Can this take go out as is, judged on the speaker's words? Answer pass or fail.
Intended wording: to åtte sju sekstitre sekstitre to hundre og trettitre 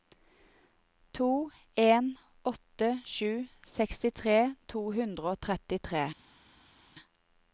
fail